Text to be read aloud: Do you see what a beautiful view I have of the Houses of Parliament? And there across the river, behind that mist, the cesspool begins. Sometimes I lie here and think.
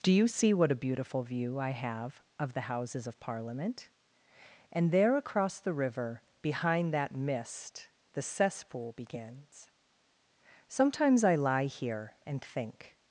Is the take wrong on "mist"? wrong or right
right